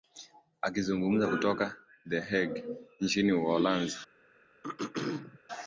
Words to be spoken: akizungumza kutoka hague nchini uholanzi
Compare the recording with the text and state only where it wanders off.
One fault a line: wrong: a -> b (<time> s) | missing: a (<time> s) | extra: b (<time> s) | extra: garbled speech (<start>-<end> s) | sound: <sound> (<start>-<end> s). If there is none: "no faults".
extra: the (2.1 s)
sound: throat clearing (4.6-5.4 s)